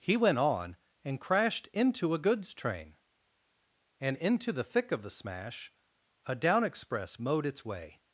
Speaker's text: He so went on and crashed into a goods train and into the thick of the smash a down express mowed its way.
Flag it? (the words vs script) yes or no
yes